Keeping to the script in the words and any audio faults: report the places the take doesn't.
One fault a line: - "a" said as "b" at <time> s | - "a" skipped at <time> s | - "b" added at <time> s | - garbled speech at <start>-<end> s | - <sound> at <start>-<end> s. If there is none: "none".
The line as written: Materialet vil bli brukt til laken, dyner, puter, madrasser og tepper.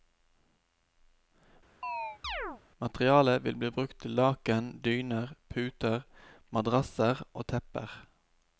- chirp at 1.8-2.6 s